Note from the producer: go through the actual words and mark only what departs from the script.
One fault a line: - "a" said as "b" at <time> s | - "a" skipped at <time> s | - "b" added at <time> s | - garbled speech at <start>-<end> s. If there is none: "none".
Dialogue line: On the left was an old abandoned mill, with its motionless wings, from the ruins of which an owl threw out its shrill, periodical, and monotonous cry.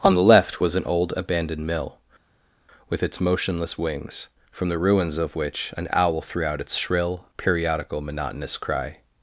- "and" skipped at 8.0 s